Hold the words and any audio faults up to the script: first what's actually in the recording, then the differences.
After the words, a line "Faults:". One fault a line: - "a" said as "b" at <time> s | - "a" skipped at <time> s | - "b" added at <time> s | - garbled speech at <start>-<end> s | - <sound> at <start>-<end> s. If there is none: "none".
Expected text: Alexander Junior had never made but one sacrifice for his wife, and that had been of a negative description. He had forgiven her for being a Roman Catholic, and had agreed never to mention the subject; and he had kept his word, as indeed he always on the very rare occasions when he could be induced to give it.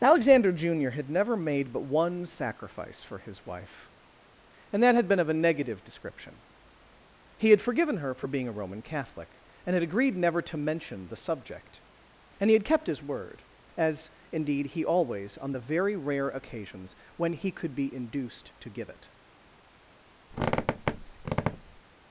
Alexander Junior had never made but one sacrifice for his wife, and that had been of a negative description. He had forgiven her for being a Roman Catholic, and had agreed never to mention the subject; and he had kept his word, as indeed he always on the very rare occasions when he could be induced to give it.
Faults:
- squeak at 20.3-21.8 s